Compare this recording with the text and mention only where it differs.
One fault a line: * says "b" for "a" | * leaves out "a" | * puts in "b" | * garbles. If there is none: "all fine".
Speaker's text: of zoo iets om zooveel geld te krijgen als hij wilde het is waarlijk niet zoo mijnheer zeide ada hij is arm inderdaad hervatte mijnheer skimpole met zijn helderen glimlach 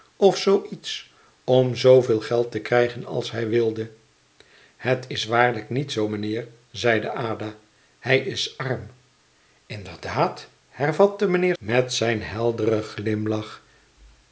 * leaves out "skimpole"